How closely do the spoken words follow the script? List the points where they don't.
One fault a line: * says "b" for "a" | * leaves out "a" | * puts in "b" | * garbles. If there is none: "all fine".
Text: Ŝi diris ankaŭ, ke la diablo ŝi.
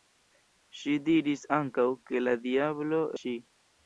all fine